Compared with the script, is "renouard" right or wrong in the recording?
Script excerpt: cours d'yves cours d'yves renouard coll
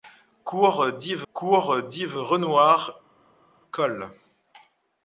right